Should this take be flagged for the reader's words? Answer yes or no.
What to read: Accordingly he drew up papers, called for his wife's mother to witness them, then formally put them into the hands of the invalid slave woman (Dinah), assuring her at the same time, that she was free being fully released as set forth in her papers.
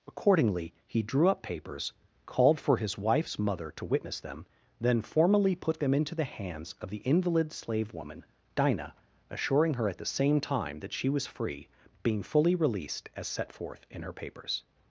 no